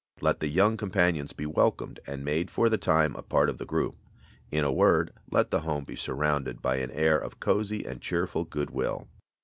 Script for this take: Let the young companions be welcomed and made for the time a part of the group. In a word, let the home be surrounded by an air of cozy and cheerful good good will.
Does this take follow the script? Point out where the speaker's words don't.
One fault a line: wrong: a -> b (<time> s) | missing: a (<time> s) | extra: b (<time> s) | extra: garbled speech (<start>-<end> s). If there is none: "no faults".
missing: good (8.7 s)